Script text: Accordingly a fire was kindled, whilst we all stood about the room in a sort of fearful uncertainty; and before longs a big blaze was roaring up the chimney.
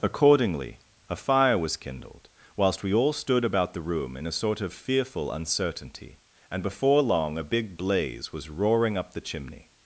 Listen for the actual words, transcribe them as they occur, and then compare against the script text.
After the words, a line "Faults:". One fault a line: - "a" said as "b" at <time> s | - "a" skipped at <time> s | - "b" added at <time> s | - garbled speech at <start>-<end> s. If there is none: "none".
Accordingly a fire was kindled, whilst we all stood about the room in a sort of fearful uncertainty; and before long a big blaze was roaring up the chimney.
Faults:
- "longs" said as "long" at 7.0 s